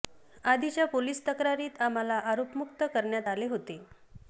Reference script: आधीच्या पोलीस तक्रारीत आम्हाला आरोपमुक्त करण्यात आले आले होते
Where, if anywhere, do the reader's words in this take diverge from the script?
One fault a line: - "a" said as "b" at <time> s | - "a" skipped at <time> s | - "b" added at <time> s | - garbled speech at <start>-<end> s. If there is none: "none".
- "आले" skipped at 3.5 s